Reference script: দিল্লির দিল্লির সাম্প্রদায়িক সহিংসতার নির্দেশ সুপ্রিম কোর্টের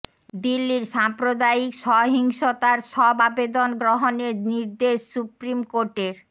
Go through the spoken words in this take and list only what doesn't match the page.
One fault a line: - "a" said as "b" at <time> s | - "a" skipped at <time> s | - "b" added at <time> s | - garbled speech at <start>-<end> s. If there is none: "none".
- "দিল্লির" skipped at 0.8 s
- "সব আবেদন গ্রহণের" added at 2.9 s